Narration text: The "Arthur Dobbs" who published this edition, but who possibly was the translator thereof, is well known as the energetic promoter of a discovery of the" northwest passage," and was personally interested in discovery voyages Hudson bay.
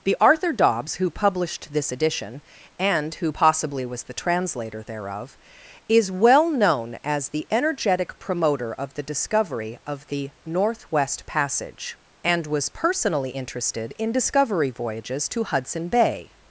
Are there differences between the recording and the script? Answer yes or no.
yes